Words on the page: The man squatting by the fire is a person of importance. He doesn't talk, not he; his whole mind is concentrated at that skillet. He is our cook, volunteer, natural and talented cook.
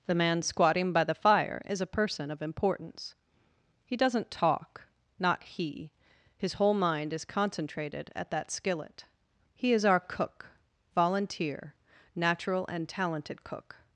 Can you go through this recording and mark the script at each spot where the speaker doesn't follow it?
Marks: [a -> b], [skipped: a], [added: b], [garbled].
The man squatting by the fire is a person of importance. He doesn't talk, not he; his whole mind is concentrated at that skillet. He is our cook, volunteer, natural and talented cook.